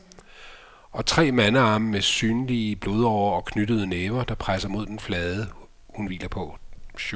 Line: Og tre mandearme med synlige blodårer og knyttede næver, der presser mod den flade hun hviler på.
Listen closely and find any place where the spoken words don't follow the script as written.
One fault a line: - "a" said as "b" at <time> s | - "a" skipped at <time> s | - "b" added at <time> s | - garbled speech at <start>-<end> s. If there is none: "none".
none